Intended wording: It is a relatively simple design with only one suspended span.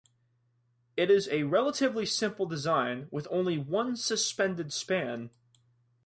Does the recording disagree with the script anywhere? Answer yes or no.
no